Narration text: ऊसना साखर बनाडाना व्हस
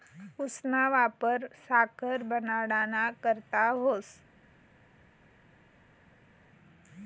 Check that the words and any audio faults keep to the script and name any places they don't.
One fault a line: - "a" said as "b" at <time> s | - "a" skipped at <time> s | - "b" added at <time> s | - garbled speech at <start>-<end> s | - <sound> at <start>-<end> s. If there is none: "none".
- "वापर" added at 0.9 s
- "करता" added at 3.2 s